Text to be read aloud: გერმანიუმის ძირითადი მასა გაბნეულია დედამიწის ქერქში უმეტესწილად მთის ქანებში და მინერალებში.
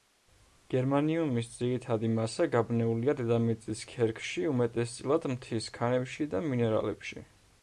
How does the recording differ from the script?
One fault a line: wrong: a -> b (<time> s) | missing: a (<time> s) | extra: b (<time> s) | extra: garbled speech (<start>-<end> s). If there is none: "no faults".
no faults